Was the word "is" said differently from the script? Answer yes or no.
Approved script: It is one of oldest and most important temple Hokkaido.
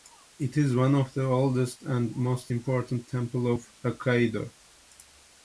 no